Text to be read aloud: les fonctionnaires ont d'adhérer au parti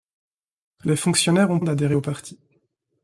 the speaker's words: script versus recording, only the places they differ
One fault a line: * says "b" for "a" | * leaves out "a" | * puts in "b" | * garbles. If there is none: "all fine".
all fine